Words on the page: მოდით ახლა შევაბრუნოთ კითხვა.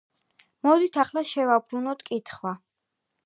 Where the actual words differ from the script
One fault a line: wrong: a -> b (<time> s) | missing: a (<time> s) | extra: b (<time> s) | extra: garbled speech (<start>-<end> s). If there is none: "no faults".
no faults